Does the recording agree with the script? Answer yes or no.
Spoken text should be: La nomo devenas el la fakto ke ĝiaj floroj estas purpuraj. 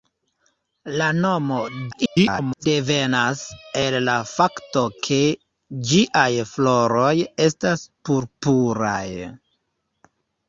no